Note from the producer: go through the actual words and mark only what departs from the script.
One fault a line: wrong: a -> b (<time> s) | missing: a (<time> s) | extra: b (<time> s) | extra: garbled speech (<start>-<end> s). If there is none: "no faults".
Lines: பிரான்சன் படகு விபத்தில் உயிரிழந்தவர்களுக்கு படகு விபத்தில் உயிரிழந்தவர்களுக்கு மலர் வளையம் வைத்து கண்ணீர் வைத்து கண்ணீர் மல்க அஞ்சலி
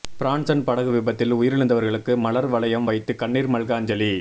missing: படகு விபத்தில் உயிரிழந்தவர்களுக்கு (2.1 s)
missing: வைத்து கண்ணீர் (3.5 s)